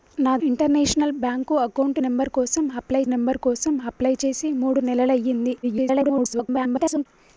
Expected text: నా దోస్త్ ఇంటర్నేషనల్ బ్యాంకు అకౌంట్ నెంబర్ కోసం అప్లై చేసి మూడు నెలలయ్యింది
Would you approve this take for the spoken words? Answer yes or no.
no